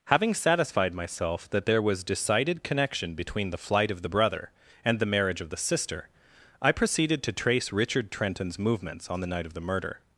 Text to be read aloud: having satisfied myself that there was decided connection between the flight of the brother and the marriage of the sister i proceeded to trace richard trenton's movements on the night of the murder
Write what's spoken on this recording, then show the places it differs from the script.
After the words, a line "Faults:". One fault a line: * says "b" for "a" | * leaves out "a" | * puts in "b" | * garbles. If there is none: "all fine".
having satisfied myself that there was decided connection between the flight of the brother and the marriage of the sister i proceeded to trace richard trenton's movements on the night of the murder
Faults:
all fine